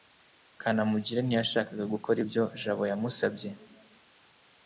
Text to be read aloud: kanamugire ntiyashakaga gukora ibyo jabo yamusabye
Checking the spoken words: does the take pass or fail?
pass